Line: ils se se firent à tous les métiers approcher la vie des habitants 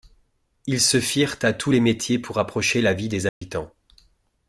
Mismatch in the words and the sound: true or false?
true